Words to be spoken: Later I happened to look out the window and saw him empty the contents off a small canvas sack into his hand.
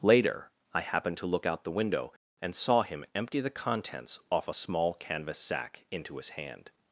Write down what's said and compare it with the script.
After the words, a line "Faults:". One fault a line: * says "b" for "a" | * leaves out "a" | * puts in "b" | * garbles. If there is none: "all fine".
Later I happened to look out the window and saw him empty the contents off a small canvas sack into his hand.
Faults:
all fine